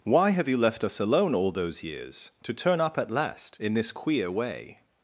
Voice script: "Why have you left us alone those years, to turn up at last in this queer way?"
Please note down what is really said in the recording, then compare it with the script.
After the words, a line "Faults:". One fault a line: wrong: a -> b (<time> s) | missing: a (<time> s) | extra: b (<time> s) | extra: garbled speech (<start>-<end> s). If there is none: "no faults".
"Why have you left us alone all those years, to turn up at last in this queer way?"
Faults:
extra: all (1.3 s)